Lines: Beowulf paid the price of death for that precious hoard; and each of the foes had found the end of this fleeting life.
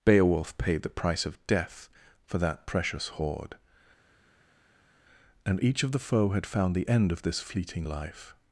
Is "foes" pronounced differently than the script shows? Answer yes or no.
yes